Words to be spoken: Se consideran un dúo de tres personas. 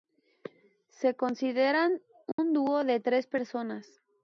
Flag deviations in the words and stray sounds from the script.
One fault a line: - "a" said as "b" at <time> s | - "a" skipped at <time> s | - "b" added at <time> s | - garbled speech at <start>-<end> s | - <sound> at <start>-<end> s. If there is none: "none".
- dropout at 2.3-2.4 s